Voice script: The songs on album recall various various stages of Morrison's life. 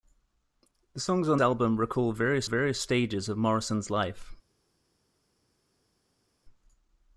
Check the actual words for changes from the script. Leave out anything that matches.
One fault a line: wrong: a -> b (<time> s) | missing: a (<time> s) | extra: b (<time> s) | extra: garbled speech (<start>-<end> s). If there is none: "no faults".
no faults